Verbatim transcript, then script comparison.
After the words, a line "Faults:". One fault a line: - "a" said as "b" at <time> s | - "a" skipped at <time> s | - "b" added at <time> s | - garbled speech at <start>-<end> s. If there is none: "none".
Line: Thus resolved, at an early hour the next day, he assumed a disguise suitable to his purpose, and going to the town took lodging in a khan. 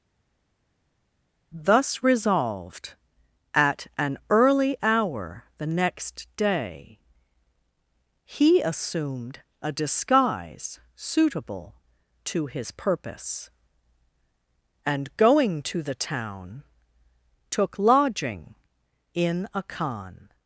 Thus resolved, at an early hour the next day, he assumed a disguise suitable to his purpose, and going to the town took lodging in a khan.
Faults:
none